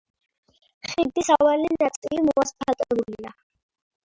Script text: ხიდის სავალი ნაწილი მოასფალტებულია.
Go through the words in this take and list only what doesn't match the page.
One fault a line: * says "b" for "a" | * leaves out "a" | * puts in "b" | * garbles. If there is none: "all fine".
all fine